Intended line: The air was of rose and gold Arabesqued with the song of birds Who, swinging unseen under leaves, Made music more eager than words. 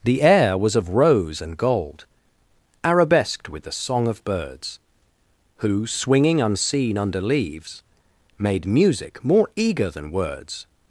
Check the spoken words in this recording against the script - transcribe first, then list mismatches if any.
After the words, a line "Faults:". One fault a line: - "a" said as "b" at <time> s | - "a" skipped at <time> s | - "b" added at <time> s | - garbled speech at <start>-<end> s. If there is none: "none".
The air was of rose and gold Arabesqued with the song of birds Who, swinging unseen under leaves, Made music more eager than words.
Faults:
none